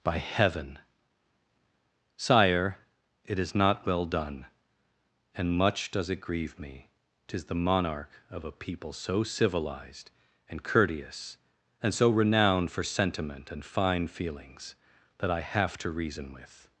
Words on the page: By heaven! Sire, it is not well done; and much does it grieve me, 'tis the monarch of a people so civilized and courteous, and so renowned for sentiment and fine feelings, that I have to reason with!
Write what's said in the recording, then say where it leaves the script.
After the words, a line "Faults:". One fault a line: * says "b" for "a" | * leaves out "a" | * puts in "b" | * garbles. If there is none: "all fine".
By heaven! Sire, it is not well done; and much does it grieve me, 'tis the monarch of a people so civilized and courteous, and so renowned for sentiment and fine feelings, that I have to reason with!
Faults:
all fine